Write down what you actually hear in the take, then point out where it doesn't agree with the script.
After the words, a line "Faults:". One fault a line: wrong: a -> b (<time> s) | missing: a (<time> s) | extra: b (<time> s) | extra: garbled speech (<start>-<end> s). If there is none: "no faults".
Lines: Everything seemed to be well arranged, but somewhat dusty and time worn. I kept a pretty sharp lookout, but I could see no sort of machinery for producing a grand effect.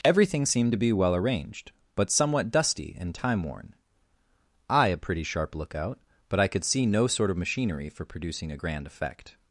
Everything seemed to be well arranged, but somewhat dusty and time worn. I a pretty sharp lookout, but I could see no sort of machinery for producing a grand effect.
Faults:
missing: kept (4.9 s)